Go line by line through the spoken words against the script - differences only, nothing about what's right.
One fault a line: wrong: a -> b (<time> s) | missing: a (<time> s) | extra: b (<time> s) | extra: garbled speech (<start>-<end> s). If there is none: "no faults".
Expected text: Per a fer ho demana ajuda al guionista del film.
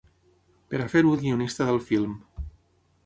missing: demana ajuda (1.2 s)